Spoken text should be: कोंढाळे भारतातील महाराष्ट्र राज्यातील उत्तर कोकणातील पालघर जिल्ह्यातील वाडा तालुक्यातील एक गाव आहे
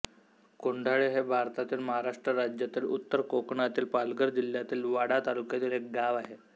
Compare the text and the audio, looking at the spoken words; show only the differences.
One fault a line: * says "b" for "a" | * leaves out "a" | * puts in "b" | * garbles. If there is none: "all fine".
* puts in "हे"